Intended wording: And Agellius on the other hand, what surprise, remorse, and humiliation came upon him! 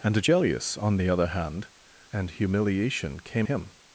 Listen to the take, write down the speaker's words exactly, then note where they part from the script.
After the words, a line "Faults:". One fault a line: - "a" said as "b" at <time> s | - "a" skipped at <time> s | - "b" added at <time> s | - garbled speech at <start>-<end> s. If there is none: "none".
And Agellius on the other hand, and humiliation came him!
Faults:
- "what surprise remorse" skipped at 1.7 s
- "upon" skipped at 3.5 s